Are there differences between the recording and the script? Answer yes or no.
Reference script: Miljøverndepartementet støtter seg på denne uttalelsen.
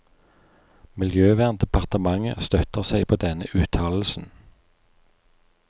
no